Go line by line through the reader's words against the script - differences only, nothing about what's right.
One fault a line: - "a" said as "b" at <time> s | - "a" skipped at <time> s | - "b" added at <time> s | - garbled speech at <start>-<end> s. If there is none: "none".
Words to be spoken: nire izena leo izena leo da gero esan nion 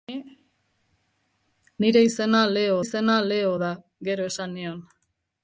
none